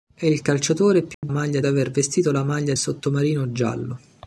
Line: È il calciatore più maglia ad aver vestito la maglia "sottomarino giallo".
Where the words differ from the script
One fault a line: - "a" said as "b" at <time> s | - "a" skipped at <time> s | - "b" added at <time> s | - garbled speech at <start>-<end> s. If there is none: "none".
none